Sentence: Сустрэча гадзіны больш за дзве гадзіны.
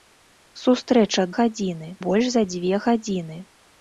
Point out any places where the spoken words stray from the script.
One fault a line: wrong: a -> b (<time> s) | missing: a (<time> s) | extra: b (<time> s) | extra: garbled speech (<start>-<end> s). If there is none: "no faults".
no faults